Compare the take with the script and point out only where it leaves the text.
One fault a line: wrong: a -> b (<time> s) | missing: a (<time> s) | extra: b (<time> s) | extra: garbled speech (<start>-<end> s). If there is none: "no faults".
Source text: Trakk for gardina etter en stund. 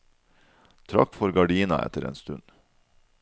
no faults